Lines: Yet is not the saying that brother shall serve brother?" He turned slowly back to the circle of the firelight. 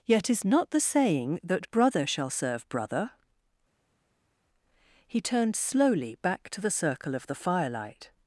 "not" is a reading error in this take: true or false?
false